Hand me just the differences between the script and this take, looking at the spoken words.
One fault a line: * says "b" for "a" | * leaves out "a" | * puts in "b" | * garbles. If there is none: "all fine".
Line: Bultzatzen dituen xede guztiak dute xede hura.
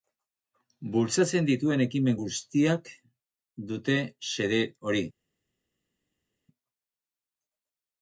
* says "ekimen" for "xede"
* says "hori" for "hura"